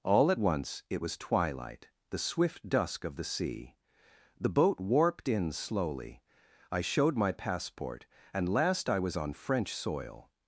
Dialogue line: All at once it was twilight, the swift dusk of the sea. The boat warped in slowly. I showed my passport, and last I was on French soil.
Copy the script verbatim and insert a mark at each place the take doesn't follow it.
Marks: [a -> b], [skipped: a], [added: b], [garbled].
All at once it was twilight, the swift dusk of the sea. The boat warped in slowly. I showed my passport, and last I was on French soil.